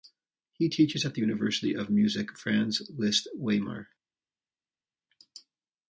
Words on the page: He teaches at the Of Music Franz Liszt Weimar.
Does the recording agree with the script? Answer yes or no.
no